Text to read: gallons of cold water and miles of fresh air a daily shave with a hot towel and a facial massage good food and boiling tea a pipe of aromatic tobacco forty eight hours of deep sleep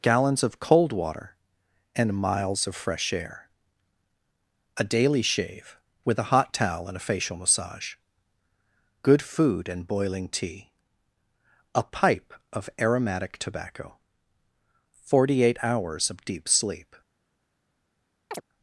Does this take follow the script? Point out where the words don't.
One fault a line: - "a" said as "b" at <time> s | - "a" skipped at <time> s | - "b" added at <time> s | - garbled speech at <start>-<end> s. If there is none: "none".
none